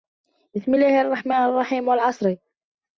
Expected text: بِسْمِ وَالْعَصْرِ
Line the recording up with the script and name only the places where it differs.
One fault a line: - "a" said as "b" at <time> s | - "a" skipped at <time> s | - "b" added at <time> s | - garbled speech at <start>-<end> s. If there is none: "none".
- "اللَّهِ الرَّحْمَنِ الرَّحِيمِ" added at 0.7 s